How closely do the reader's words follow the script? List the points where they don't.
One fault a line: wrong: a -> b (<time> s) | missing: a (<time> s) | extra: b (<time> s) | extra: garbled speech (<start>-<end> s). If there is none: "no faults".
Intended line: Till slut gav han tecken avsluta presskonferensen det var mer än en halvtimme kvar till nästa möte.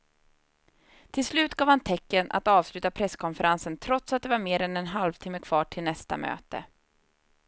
extra: att (2.3 s)
extra: trots att (3.8 s)